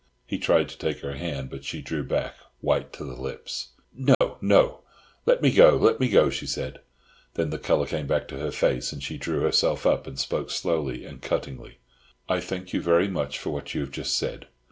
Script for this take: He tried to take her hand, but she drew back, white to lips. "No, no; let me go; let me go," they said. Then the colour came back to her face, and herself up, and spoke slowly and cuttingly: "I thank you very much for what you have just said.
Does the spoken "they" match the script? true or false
false